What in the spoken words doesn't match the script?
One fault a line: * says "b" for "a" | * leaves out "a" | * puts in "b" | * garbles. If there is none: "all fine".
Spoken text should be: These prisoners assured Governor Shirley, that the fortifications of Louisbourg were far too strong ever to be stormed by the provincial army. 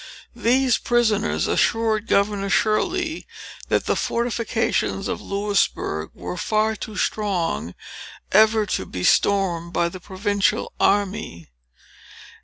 all fine